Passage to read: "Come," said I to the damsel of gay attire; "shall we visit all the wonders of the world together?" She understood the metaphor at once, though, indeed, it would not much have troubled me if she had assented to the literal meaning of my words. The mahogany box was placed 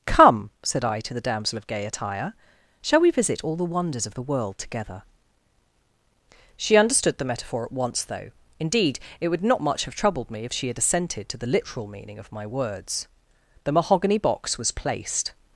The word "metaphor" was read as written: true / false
true